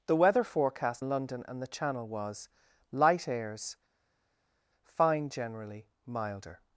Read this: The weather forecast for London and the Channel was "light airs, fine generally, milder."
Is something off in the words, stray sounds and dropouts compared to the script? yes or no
yes